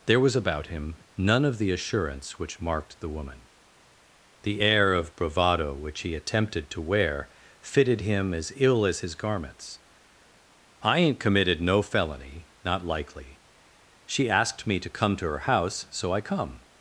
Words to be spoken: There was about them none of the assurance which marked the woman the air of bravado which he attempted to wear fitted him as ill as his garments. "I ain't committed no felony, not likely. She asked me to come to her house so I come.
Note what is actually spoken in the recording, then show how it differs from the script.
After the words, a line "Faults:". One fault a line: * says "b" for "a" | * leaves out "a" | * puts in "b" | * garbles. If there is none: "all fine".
There was about him none of the assurance which marked the woman the air of bravado which he attempted to wear fitted him as ill as his garments. "I ain't committed no felony, not likely. She asked me to come to her house so I come.
Faults:
* says "him" for "them"